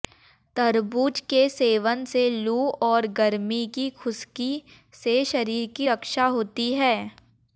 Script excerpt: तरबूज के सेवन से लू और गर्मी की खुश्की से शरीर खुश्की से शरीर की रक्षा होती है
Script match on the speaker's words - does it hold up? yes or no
no